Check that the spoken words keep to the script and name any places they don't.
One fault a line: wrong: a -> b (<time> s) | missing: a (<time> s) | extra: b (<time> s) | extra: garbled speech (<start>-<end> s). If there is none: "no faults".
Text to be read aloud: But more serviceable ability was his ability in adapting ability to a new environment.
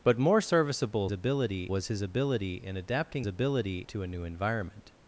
no faults